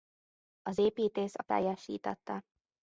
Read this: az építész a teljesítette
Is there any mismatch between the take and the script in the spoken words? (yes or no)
no